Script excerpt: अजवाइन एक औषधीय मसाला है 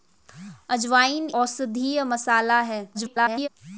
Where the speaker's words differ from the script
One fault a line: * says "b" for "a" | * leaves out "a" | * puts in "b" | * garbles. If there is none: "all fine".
* leaves out "एक"
* garbles